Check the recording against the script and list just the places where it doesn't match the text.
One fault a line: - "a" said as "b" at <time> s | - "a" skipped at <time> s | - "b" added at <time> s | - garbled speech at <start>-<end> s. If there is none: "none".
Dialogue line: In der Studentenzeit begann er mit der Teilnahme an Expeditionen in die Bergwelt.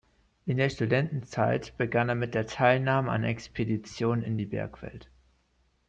none